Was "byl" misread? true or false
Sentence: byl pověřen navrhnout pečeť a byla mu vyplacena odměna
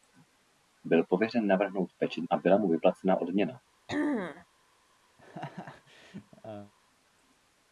false